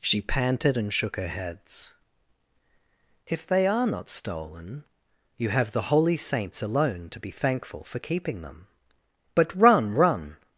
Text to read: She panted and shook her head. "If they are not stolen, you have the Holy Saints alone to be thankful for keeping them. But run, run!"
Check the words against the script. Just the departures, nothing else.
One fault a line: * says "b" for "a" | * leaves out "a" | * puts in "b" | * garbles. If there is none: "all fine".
* says "heads" for "head"